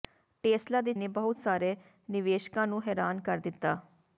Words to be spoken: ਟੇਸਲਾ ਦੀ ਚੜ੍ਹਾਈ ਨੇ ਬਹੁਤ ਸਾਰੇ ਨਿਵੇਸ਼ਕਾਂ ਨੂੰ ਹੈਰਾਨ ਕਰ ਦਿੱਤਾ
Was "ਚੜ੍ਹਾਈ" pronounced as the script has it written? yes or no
no